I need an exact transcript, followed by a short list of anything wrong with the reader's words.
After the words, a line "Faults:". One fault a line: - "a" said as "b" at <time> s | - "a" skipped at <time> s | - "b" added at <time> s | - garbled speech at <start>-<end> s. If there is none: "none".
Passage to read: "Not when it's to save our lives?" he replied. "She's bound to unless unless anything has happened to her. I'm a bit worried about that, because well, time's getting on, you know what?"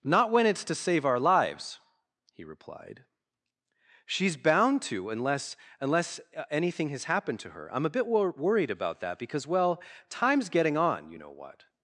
"Not when it's to save our lives?" he replied. "She's bound to unless unless anything has happened to her. I'm a bit wor worried about that, because well, time's getting on, you know what?"
Faults:
- "wor" added at 8.1 s